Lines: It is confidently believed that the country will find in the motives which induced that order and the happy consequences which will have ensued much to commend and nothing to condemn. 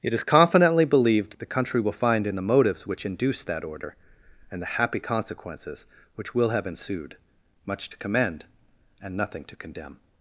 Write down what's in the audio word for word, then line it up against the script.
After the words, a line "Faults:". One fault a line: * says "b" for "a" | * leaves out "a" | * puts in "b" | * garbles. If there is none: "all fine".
It is confidently believed the country will find in the motives which induced that order and the happy consequences which will have ensued much to commend and nothing to condemn.
Faults:
* leaves out "that"